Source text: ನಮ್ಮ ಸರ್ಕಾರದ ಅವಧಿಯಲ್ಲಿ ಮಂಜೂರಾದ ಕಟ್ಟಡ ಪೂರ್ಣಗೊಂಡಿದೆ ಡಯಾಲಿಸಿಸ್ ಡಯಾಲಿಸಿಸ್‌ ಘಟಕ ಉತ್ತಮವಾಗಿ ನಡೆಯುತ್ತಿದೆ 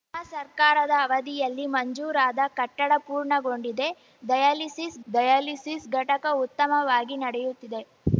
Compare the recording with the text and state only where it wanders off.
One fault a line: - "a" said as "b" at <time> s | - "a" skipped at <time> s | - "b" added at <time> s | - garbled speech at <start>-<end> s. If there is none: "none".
none